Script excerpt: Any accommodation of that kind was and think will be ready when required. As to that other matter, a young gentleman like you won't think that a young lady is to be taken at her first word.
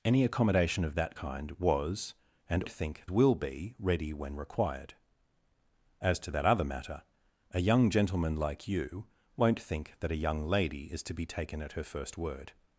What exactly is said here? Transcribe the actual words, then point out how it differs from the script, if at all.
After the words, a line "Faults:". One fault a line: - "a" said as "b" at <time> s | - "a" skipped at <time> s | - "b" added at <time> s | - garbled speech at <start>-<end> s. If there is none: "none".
Any accommodation of that kind was and think will be ready when required. As to that other matter, a young gentleman like you won't think that a young lady is to be taken at her first word.
Faults:
none